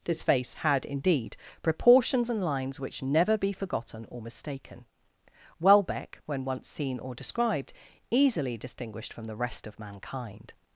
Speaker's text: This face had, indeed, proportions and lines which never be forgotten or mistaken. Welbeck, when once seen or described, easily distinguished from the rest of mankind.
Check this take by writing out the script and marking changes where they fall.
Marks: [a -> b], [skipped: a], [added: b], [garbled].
This face had, indeed, proportions and lines which never be forgotten or mistaken. Welbeck, when once seen or described, easily distinguished from the rest of mankind.